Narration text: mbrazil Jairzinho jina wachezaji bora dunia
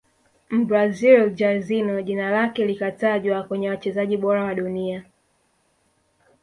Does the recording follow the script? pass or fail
fail